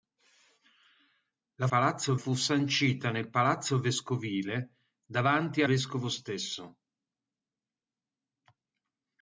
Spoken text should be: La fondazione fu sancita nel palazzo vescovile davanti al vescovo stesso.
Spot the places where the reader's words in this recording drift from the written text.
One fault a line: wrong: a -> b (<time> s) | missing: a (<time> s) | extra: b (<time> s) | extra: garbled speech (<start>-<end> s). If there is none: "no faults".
wrong: fondazione -> palazzo (1.7 s)
missing: al (5.6 s)